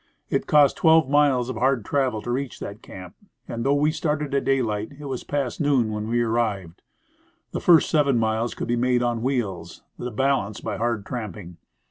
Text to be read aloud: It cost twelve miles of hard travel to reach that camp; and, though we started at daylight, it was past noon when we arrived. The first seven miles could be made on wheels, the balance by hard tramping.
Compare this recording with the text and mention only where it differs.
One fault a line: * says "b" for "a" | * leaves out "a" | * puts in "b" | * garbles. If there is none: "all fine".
all fine